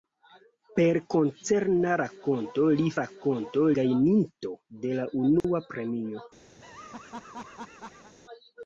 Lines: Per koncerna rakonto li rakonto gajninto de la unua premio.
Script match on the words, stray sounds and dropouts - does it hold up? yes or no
no